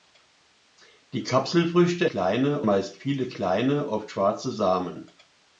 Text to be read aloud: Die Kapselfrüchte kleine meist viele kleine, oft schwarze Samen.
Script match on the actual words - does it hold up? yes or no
yes